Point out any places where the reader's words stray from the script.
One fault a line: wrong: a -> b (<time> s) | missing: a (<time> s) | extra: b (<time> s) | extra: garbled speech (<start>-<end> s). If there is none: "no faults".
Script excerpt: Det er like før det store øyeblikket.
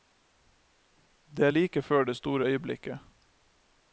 no faults